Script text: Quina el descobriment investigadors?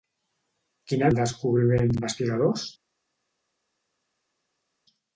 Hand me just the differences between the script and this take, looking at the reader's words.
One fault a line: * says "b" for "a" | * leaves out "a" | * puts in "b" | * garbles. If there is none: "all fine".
all fine